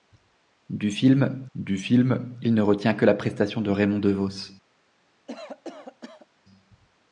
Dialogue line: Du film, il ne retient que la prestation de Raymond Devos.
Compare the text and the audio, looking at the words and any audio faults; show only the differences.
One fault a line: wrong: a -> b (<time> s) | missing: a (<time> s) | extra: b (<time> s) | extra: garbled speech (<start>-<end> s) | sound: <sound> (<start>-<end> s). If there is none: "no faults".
extra: du film (1.6 s)
sound: cough (5.3-6.3 s)